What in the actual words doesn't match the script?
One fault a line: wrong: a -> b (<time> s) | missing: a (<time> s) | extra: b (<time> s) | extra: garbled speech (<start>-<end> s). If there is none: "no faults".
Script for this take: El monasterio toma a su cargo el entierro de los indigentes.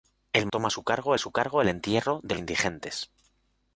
missing: monasterio (0.5 s)
extra: su cargo (1.2 s)
missing: los (2.4 s)